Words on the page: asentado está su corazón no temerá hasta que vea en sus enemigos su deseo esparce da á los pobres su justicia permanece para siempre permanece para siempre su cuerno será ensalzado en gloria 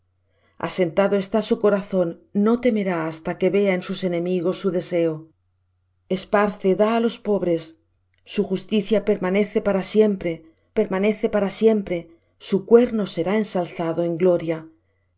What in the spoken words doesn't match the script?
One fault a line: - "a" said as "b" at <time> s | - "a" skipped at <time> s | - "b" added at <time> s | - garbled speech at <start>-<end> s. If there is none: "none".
none